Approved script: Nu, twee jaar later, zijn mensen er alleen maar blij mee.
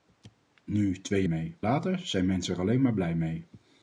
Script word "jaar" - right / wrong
wrong